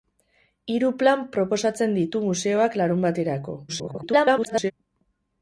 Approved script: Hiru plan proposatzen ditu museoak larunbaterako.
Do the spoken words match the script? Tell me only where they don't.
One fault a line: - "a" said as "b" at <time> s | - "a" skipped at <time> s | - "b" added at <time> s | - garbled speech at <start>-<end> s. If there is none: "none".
- garbled speech at 3.7-4.7 s